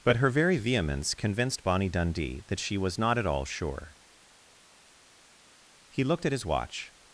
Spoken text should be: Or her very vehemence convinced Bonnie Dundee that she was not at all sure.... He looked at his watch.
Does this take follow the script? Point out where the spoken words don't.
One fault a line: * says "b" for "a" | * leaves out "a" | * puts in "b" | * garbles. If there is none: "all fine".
* says "But" for "Or"